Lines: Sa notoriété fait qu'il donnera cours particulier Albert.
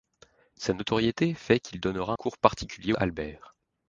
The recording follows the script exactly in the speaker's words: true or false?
true